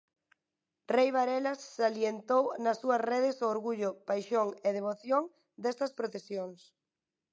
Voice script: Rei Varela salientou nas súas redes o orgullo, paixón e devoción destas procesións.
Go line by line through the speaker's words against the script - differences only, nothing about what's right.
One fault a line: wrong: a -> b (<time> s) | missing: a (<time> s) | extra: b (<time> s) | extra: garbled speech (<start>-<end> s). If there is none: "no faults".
no faults